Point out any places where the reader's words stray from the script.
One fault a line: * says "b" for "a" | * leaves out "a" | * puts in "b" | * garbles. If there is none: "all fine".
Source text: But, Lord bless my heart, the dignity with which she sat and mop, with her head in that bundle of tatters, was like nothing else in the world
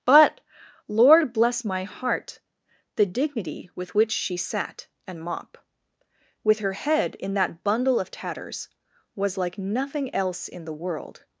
all fine